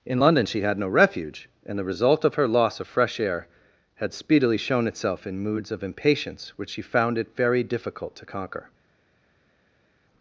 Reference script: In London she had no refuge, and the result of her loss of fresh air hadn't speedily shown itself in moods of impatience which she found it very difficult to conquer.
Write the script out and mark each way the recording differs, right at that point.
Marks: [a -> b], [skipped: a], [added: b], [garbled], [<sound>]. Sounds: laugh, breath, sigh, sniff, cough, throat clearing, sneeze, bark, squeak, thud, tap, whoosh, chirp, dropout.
In London she had no refuge, and the result of her loss of fresh air [hadn't -> had] speedily shown itself in moods of impatience which she found it very difficult to conquer.